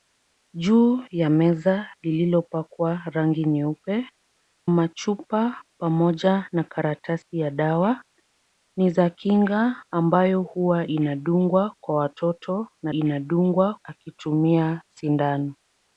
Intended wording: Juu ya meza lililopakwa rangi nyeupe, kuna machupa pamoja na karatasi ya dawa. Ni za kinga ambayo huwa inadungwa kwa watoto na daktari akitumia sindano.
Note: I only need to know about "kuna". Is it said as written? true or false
false